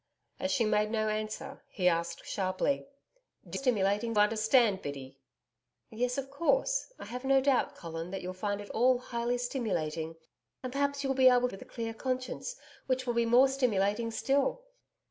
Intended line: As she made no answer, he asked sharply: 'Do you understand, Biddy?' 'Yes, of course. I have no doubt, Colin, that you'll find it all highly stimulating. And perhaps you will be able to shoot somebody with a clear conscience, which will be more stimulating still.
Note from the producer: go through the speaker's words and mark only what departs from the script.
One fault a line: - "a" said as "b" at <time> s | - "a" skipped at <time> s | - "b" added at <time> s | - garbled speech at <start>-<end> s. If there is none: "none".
- "you" said as "stimulating" at 3.5 s
- "to shoot somebody" skipped at 11.5 s